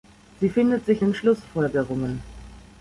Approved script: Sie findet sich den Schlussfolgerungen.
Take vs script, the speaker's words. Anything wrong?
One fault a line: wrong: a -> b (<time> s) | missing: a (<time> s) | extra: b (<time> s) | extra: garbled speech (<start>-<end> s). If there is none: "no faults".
no faults